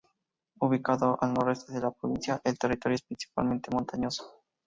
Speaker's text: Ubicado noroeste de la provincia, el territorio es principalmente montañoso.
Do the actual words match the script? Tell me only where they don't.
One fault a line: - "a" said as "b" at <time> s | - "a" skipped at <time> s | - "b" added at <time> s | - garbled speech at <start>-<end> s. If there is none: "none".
- "al" added at 1.2 s